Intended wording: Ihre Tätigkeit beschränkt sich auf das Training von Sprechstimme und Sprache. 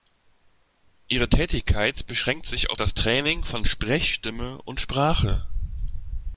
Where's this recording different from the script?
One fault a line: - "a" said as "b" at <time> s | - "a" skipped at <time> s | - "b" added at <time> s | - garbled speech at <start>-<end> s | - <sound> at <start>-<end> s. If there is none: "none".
none